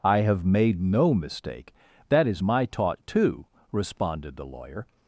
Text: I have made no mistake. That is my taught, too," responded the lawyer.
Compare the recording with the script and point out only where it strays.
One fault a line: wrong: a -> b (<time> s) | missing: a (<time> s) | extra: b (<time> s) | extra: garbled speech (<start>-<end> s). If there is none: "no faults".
no faults